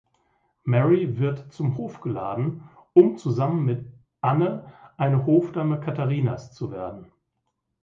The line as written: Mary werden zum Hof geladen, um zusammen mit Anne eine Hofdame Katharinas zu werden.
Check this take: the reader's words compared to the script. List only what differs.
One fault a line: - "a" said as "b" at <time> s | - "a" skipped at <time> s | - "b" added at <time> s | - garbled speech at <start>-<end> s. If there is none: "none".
- "werden" said as "wird" at 1.2 s